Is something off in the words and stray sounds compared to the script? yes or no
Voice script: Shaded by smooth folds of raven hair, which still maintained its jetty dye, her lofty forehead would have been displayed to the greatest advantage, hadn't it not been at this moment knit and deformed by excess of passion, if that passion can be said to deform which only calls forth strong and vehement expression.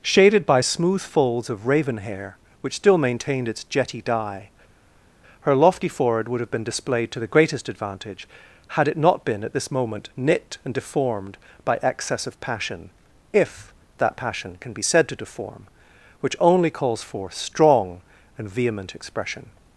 yes